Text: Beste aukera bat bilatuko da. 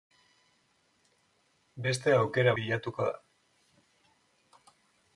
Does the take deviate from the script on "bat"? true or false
true